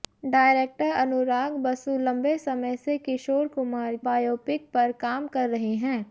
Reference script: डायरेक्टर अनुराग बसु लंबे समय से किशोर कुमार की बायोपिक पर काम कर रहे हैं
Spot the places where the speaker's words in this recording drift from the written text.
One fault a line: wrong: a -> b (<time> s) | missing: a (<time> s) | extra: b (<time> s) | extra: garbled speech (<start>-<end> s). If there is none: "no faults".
missing: की (4.0 s)